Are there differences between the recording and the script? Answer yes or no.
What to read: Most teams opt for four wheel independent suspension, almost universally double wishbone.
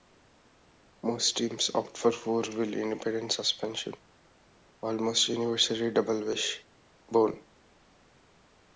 no